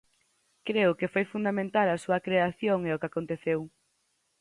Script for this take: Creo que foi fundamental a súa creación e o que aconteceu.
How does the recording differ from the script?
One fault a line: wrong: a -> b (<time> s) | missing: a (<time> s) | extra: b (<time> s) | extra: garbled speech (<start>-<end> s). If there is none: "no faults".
no faults